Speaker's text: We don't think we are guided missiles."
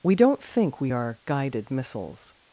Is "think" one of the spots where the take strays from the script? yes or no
no